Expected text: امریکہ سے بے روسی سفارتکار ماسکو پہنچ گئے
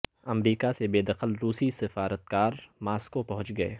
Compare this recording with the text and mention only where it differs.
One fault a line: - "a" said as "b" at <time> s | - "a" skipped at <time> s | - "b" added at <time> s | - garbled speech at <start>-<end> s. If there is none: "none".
- "دخل" added at 1.0 s